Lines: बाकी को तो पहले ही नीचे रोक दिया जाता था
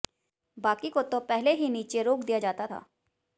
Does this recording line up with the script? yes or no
yes